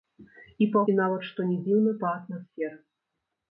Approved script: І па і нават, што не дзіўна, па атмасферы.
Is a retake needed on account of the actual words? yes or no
no